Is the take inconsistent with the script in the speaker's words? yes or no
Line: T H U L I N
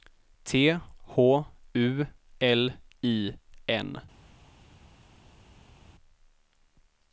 no